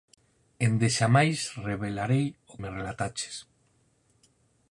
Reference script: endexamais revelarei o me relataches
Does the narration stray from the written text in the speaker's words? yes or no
no